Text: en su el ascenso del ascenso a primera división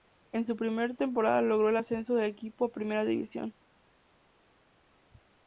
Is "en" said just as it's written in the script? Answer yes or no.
yes